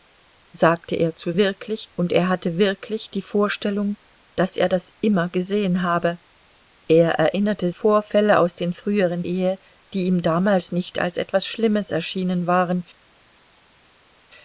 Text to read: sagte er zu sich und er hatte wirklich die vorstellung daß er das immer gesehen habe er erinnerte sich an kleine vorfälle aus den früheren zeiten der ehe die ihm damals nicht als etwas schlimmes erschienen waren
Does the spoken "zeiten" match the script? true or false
false